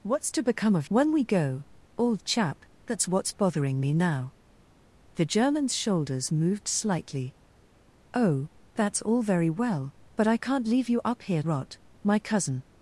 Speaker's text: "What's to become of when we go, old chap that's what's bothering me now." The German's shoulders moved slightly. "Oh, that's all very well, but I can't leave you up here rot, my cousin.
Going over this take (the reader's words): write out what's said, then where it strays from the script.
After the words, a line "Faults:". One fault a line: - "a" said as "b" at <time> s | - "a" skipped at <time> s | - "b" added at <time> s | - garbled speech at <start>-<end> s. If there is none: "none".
"What's to become of when we go, old chap that's what's bothering me now." The German's shoulders moved slightly. "Oh, that's all very well, but I can't leave you up here rot, my cousin.
Faults:
none